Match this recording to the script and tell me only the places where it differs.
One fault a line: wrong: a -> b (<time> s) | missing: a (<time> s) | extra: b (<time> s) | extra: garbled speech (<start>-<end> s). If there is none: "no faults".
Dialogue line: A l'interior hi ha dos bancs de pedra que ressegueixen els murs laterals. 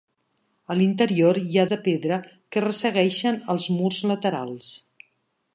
missing: dos bancs (1.6 s)